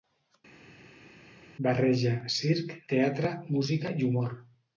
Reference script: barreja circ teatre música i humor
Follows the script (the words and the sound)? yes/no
yes